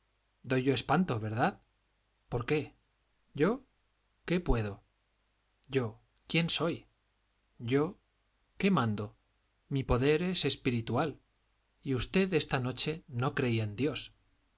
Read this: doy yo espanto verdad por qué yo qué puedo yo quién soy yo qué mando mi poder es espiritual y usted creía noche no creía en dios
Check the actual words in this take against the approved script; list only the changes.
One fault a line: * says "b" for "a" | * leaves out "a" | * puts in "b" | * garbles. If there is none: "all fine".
* says "esta" for "creía"